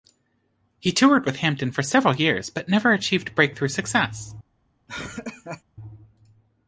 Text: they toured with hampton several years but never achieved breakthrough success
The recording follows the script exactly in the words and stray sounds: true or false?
false